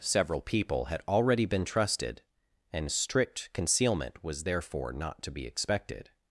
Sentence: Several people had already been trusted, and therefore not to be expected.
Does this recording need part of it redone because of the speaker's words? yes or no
yes